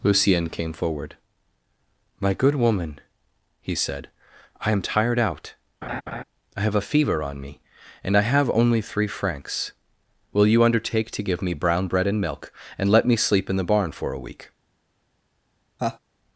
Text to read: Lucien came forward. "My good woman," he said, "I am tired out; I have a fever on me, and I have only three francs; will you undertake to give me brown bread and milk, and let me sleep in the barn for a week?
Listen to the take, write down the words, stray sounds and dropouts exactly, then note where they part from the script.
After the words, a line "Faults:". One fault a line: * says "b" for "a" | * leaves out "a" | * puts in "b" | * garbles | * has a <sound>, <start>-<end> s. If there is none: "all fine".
Lucien came forward. "My good woman," he said, "I am tired out; I have a fever on me, and I have only three francs; will you undertake to give me brown bread and milk, and let me sleep in the barn for a week?
Faults:
* has a laugh, 5.8-6.2 s
* has a laugh, 15.8-16.0 s